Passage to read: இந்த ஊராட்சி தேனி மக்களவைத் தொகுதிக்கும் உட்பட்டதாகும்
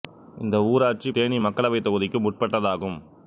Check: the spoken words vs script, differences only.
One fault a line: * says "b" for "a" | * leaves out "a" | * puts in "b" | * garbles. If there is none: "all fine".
all fine